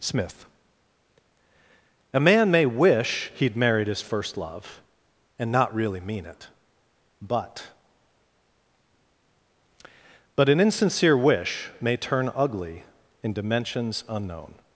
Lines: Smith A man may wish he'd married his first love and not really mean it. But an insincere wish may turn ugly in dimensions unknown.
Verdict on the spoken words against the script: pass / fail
fail